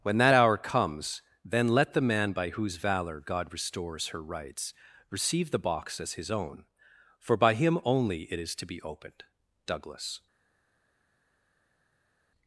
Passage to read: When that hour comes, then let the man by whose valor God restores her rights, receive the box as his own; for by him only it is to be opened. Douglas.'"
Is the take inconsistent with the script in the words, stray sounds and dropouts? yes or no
no